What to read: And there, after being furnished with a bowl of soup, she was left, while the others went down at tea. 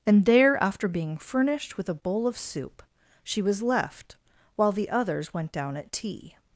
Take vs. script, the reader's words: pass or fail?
pass